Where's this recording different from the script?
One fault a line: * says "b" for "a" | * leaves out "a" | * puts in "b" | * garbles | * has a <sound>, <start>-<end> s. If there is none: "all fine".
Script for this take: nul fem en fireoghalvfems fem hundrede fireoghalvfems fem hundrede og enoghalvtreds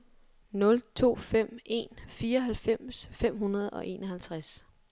* puts in "to"
* leaves out "fireoghalvfems fem hundrede"